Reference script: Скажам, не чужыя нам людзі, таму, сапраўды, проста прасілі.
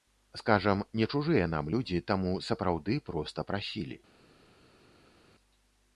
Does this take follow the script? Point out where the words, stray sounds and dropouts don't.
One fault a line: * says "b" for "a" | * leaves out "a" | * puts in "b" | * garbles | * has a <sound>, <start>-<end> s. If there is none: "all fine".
all fine